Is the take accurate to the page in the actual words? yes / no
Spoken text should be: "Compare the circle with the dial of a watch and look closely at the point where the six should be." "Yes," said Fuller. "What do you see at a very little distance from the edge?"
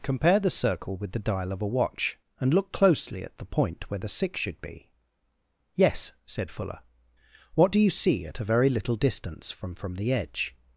no